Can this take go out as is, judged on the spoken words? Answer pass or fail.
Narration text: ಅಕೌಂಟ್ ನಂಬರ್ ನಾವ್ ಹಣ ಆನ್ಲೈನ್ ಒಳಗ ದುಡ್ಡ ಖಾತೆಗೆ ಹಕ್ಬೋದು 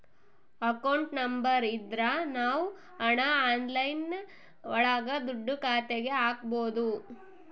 fail